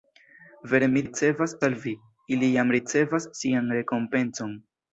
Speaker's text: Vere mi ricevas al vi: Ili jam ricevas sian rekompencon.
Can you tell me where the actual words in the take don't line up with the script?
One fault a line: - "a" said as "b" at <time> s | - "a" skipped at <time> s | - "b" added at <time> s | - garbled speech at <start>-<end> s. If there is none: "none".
none